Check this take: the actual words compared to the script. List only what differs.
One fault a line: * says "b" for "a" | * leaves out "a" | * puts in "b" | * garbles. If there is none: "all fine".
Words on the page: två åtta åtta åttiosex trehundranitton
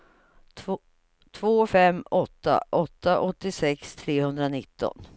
* puts in "fem"